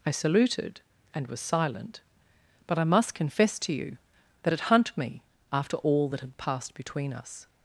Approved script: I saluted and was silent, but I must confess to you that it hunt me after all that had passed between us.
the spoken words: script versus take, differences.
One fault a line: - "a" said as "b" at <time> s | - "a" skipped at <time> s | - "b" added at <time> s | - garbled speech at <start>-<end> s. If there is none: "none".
none